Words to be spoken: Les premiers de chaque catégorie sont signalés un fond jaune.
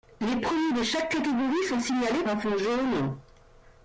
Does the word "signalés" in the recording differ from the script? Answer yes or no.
no